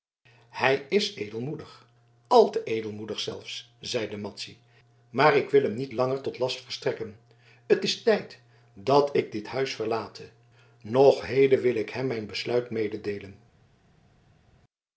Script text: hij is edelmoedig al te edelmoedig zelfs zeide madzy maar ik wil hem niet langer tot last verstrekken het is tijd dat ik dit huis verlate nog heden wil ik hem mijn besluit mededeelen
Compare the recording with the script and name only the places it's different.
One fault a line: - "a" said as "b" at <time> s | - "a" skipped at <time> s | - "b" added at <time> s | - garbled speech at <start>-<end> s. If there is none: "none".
none